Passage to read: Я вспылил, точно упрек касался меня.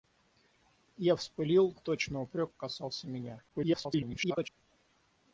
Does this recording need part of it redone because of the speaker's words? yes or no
yes